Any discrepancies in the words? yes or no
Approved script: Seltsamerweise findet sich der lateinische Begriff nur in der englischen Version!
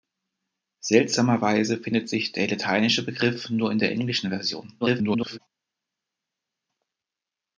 yes